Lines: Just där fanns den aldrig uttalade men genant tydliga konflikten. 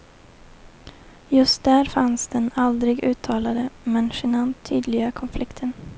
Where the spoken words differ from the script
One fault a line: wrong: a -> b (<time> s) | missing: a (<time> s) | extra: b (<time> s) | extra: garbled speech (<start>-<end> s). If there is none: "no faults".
no faults